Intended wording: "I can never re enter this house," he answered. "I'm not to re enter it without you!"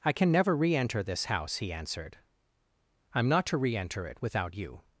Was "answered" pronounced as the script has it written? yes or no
yes